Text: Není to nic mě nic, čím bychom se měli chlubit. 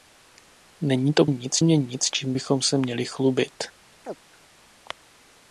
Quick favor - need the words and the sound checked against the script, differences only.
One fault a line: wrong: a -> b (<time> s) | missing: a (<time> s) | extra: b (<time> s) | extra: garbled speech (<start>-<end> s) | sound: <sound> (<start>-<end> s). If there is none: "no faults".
sound: chirp (4.0-4.2 s)